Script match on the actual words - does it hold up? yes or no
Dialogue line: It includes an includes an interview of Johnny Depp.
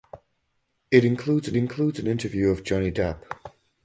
yes